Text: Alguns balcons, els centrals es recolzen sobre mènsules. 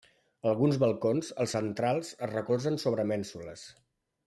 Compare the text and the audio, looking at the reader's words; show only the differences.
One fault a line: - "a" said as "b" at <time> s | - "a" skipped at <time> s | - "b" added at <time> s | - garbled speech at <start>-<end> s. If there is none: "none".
none